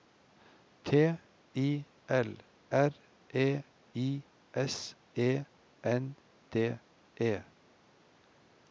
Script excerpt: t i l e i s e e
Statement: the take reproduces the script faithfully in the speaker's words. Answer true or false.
false